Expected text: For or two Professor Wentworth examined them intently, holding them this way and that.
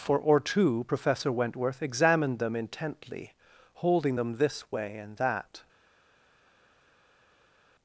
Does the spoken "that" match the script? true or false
true